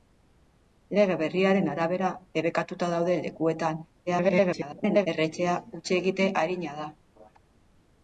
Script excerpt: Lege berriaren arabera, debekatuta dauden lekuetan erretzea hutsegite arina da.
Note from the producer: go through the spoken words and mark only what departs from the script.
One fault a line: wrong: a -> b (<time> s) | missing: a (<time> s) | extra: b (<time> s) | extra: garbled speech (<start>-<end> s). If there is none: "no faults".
extra: garbled speech (4.1-5.1 s)